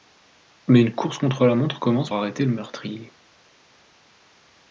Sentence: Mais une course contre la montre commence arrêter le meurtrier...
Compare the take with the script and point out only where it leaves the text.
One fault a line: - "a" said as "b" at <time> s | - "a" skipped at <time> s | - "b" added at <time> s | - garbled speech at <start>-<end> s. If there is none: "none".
none